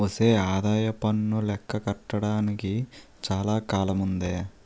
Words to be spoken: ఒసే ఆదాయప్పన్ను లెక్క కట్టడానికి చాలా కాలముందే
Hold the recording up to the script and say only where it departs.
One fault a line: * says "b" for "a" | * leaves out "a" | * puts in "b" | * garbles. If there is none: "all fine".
all fine